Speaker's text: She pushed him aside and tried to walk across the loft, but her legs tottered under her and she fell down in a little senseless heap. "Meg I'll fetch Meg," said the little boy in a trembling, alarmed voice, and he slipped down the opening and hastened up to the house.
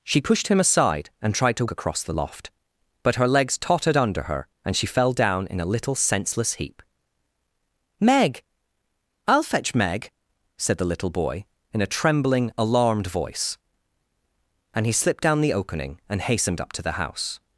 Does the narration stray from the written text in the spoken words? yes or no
yes